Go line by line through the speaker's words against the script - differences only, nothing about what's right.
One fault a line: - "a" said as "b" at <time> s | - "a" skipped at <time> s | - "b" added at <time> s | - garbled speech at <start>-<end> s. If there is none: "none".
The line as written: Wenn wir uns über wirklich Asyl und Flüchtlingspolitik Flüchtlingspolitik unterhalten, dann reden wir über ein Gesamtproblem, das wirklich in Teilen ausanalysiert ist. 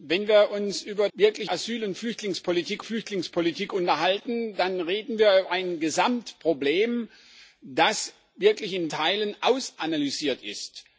none